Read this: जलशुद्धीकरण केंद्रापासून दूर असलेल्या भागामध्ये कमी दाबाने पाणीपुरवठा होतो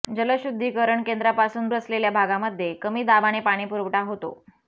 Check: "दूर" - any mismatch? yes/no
yes